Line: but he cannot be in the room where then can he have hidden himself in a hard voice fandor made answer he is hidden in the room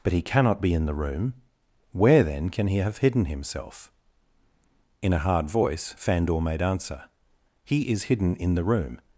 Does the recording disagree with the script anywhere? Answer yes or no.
no